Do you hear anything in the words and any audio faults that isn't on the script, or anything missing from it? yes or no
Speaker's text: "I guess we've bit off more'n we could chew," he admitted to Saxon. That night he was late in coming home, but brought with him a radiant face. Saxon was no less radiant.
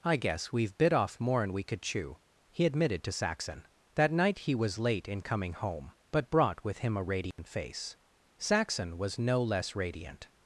yes